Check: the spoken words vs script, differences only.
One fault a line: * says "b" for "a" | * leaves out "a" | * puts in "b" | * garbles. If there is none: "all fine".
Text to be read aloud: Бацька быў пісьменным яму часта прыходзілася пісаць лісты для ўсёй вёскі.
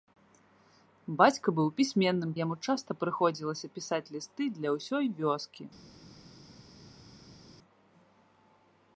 all fine